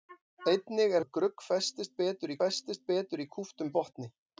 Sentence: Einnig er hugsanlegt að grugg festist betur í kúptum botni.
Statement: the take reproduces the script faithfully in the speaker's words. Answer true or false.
false